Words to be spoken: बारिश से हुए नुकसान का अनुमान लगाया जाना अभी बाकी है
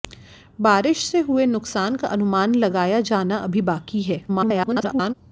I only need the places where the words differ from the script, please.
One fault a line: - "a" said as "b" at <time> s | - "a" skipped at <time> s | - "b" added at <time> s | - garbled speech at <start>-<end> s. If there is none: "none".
- garbled speech at 4.3-5.1 s